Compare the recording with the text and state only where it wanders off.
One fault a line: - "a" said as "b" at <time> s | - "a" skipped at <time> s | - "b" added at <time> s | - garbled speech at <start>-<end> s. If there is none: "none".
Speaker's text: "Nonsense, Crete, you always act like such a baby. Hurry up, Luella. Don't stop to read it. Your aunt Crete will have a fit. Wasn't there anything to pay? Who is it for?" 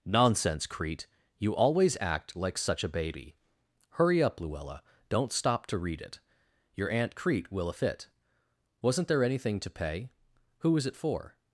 - "have" skipped at 7.7 s